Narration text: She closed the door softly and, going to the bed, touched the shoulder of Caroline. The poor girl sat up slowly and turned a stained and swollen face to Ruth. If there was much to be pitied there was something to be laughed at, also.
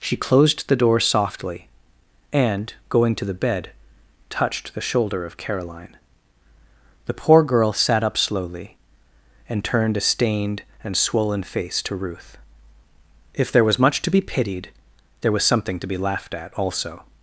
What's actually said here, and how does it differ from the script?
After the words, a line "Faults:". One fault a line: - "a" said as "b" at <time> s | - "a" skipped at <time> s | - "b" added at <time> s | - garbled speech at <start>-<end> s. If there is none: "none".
She closed the door softly and, going to the bed, touched the shoulder of Caroline. The poor girl sat up slowly and turned a stained and swollen face to Ruth. If there was much to be pitied there was something to be laughed at, also.
Faults:
none